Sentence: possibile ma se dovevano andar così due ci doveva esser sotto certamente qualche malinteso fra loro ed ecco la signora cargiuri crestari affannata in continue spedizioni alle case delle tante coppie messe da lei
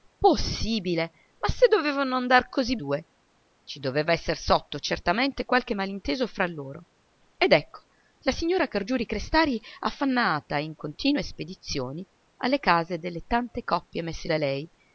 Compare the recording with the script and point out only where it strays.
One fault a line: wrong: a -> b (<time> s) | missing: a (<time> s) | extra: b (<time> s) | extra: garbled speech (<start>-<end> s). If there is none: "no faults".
no faults